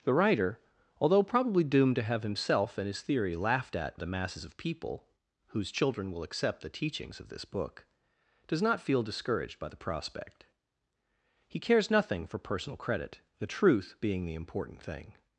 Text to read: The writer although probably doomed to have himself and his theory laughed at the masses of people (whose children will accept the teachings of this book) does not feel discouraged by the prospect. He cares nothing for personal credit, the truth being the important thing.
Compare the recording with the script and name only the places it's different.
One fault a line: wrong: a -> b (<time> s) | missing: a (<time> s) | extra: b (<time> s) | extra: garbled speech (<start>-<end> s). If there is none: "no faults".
no faults